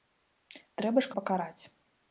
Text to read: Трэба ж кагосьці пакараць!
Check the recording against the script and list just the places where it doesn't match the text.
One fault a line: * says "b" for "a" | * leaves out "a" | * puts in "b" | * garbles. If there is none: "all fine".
* leaves out "кагосьці"